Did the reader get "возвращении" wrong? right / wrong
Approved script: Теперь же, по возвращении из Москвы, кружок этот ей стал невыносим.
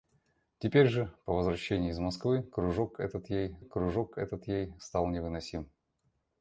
right